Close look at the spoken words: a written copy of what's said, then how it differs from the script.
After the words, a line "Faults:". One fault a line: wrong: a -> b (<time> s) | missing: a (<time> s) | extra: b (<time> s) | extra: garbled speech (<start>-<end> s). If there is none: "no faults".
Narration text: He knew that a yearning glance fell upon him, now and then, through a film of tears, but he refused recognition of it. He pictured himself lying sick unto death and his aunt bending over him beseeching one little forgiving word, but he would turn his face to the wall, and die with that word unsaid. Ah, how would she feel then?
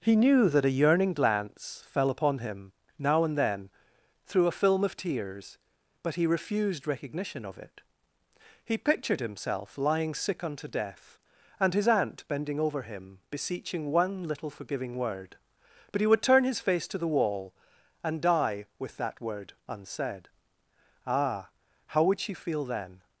He knew that a yearning glance fell upon him, now and then, through a film of tears, but he refused recognition of it. He pictured himself lying sick unto death and his aunt bending over him beseeching one little forgiving word, but he would turn his face to the wall, and die with that word unsaid. Ah, how would she feel then?
Faults:
no faults